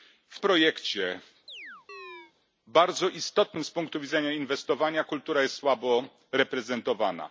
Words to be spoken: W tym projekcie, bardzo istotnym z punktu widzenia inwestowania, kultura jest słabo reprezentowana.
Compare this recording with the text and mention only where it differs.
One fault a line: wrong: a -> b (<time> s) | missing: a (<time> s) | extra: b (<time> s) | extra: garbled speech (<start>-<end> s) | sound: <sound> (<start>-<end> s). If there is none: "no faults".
missing: tym (0.4 s)
sound: chirp (1.5-2.3 s)